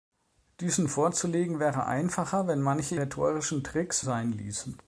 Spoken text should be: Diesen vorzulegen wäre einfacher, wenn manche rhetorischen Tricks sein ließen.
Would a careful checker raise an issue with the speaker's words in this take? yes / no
no